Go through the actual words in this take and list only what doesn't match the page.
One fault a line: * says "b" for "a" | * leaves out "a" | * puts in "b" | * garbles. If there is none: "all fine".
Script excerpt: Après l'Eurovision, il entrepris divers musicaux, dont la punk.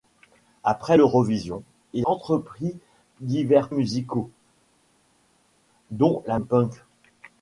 all fine